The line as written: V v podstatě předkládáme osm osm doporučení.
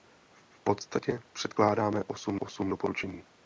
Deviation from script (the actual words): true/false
false